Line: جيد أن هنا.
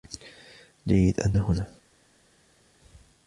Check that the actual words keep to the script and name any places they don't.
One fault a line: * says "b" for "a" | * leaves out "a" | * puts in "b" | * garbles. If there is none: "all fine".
all fine